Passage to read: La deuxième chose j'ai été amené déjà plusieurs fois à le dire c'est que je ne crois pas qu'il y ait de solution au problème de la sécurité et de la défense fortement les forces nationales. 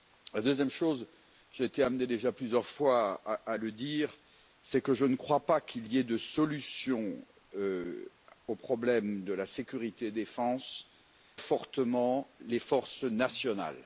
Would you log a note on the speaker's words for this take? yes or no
no